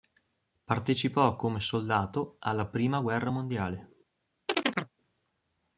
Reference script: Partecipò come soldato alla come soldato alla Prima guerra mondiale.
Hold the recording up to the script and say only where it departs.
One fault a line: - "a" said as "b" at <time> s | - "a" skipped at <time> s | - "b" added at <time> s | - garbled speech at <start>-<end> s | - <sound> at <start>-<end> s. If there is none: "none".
- "come soldato alla" skipped at 2.6 s
- chirp at 4.5-4.9 s